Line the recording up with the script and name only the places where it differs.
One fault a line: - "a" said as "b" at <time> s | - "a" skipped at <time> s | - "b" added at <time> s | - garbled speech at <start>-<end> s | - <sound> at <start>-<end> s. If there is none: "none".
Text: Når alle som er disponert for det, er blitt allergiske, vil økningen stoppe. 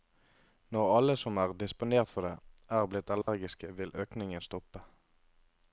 - dropout at 3.2-3.3 s